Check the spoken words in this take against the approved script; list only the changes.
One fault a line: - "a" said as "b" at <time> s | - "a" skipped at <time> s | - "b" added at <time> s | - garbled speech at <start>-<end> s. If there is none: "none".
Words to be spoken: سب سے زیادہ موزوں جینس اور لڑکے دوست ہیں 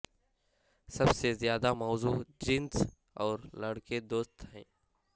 none